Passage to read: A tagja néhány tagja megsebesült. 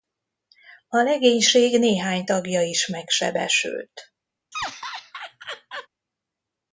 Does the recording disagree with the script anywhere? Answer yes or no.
yes